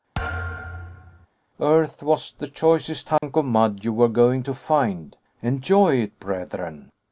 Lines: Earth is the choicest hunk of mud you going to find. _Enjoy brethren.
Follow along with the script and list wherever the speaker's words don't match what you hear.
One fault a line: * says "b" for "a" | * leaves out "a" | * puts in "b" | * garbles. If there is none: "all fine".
* says "was" for "is"
* puts in "were"
* puts in "it"